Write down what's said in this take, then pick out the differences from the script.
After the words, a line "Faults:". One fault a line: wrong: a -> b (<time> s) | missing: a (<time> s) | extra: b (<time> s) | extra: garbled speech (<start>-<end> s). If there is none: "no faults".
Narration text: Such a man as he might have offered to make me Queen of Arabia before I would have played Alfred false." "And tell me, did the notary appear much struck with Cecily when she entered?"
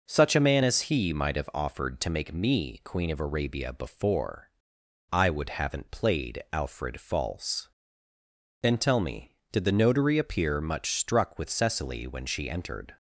Such a man as he might have offered to make me Queen of Arabia before I would haven't played Alfred false." "And tell me, did the notary appear much struck with Cecily when she entered?"
Faults:
wrong: have -> haven't (5.5 s)